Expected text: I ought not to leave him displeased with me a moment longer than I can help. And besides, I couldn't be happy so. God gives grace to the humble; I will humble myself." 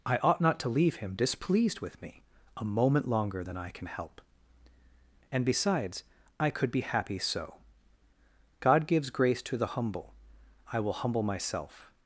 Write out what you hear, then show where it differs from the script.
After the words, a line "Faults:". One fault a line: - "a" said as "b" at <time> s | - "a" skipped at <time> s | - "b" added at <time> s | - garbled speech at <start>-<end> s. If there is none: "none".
I ought not to leave him displeased with me a moment longer than I can help. And besides, I could be happy so. God gives grace to the humble; I will humble myself."
Faults:
- "couldn't" said as "could" at 6.5 s